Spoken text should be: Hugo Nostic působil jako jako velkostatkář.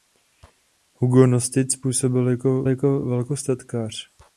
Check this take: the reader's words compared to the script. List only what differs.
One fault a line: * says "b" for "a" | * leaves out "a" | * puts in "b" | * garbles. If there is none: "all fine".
all fine